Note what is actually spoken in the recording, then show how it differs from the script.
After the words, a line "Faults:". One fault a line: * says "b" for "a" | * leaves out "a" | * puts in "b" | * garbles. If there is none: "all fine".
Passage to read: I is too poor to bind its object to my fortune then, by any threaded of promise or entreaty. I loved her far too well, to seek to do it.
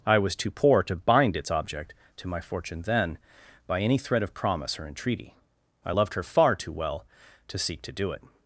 I was too poor to bind its object to my fortune then, by any thread of promise or entreaty. I loved her far too well, to seek to do it.
Faults:
* says "was" for "is"
* says "thread" for "threaded"